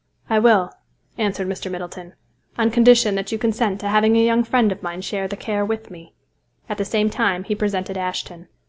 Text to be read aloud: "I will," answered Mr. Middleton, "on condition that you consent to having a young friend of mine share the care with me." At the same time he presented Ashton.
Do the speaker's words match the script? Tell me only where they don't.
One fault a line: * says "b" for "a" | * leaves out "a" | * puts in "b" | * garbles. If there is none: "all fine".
all fine